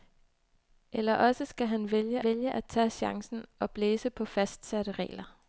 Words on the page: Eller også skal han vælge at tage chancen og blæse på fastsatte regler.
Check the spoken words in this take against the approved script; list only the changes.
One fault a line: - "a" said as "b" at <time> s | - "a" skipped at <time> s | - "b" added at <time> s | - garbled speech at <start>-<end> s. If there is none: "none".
- "vælge" added at 2.2 s